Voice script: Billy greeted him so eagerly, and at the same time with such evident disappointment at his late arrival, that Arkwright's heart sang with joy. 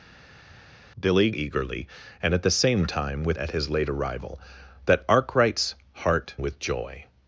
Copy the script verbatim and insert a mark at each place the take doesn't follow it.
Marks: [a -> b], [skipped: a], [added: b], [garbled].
Billy [skipped: greeted him so] eagerly, and at the same time with [skipped: such evident disappointment] at his late arrival, that Arkwright's heart [skipped: sang] with joy.